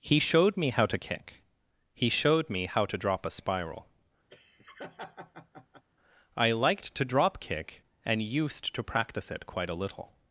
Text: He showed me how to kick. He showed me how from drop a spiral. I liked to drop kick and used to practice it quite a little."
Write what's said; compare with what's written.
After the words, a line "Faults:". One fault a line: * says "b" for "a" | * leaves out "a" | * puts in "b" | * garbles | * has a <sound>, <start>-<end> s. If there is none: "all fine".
He showed me how to kick. He showed me how to drop a spiral. I liked to drop kick and used to practice it quite a little."
Faults:
* says "to" for "from"
* has a laugh, 4.3-5.8 s